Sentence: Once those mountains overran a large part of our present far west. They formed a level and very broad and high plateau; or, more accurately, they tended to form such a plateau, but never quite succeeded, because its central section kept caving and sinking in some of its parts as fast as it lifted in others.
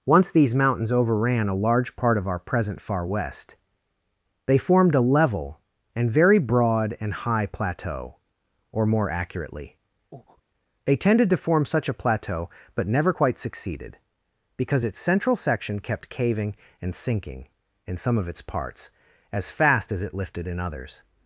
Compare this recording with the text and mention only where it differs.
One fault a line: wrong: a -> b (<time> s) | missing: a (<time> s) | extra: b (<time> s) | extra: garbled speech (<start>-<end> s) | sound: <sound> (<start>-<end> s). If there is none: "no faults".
wrong: those -> these (0.3 s)
sound: breath (10.1-10.4 s)